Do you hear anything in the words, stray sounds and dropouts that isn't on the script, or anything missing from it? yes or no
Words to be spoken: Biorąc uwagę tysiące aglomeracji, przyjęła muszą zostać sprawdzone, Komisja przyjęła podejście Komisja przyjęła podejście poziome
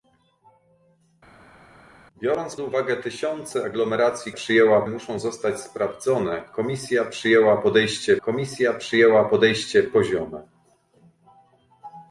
no